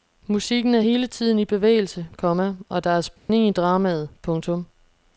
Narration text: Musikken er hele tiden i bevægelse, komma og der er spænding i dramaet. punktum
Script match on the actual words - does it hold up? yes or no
yes